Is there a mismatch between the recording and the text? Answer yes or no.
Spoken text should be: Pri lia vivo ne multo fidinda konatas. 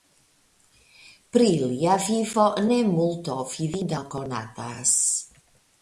no